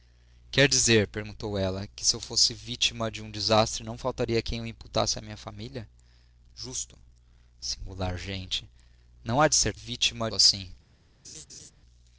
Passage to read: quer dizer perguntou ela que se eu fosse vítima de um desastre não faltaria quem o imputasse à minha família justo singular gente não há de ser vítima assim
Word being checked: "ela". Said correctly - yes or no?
yes